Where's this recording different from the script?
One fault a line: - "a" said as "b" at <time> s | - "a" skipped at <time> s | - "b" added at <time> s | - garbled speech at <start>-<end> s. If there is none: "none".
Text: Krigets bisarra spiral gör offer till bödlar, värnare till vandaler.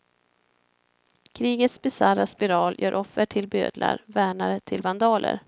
none